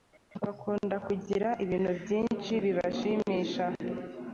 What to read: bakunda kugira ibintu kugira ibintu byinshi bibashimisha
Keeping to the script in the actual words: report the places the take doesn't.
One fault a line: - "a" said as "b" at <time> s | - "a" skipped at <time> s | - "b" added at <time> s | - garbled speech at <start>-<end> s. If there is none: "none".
- "kugira ibintu" skipped at 1.9 s